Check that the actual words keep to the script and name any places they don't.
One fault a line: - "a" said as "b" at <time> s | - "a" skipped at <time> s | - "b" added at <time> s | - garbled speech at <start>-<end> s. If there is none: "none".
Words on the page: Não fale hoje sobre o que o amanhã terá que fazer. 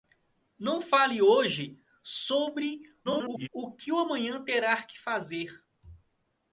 - garbled speech at 3.0-3.5 s